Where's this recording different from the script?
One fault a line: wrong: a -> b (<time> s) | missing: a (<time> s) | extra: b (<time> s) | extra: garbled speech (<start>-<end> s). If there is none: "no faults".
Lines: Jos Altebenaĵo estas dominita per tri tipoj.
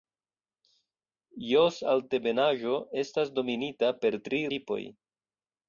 no faults